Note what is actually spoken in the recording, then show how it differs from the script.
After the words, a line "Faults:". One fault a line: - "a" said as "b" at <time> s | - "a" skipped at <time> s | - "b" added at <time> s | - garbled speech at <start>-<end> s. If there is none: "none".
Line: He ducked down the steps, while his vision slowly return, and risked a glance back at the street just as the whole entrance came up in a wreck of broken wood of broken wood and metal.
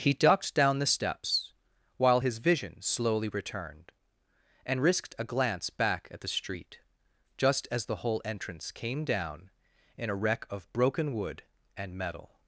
He ducked down the steps, while his vision slowly returned, and risked a glance back at the street just as the whole entrance came down in a wreck of broken wood and metal.
Faults:
- "return" said as "returned" at 3.3 s
- "up" said as "down" at 9.0 s
- "of broken wood" skipped at 11.4 s